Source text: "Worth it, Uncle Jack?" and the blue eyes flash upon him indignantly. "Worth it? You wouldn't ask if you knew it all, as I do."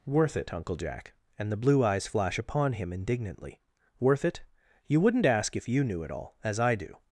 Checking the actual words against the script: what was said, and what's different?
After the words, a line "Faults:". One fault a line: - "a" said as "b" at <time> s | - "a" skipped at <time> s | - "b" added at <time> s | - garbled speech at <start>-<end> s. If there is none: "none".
"Worth it, Uncle Jack?" and the blue eyes flash upon him indignantly. "Worth it? You wouldn't ask if you knew it all, as I do."
Faults:
none